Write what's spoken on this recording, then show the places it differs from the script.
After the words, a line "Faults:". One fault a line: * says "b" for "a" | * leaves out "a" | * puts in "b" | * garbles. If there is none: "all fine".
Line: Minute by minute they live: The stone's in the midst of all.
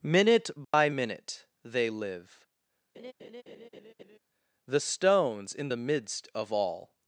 Minute by minute they live: The stone's in the midst of all.
Faults:
all fine